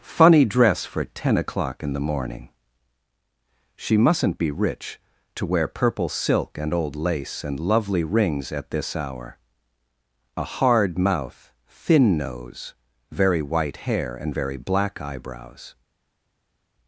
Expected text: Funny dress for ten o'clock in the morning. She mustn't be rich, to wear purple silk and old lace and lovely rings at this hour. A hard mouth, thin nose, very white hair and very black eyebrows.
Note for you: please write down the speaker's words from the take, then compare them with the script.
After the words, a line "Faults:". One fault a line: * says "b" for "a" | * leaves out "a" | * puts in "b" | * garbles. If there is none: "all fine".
Funny dress for ten o'clock in the morning. She mustn't be rich, to wear purple silk and old lace and lovely rings at this hour. A hard mouth, thin nose, very white hair and very black eyebrows.
Faults:
all fine